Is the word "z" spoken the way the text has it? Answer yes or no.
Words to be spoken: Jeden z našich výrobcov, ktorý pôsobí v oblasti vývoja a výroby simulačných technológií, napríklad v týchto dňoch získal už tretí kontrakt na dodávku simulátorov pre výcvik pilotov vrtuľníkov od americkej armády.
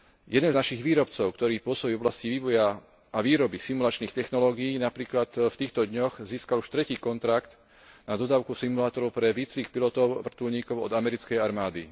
no